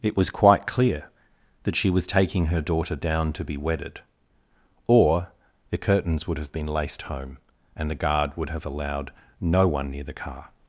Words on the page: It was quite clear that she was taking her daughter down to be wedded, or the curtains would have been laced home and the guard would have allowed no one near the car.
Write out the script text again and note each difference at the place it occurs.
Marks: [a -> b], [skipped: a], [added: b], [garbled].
It was quite clear that she was taking her daughter down to be wedded, or the curtains would have been laced home and the guard would have allowed no one near the car.